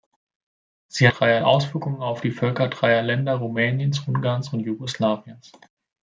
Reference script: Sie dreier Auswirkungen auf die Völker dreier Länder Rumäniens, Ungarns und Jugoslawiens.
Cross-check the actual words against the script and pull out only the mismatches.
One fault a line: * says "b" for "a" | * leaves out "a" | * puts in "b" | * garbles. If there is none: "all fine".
all fine